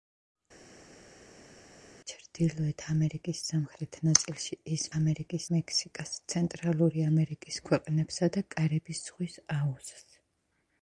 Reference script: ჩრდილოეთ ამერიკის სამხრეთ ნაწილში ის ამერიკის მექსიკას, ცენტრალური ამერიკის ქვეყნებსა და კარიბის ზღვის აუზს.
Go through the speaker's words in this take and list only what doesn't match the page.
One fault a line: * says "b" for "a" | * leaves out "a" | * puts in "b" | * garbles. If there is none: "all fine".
all fine